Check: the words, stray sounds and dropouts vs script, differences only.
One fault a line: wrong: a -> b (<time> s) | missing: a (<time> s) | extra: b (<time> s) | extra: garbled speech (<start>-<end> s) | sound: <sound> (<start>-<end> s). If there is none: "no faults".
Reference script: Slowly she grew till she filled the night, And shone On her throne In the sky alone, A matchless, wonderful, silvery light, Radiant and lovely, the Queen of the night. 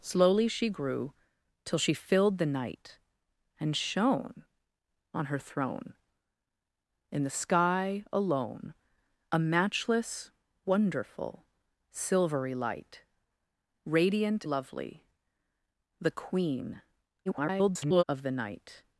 missing: and (14.4 s)
extra: garbled speech (17.3-18.0 s)